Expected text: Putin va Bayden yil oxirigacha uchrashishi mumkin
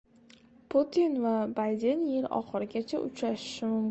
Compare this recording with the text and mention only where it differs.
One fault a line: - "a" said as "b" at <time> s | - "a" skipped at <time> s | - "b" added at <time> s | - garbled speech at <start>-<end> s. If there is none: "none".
none